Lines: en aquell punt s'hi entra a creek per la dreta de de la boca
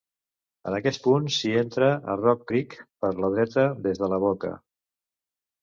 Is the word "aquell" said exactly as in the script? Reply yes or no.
no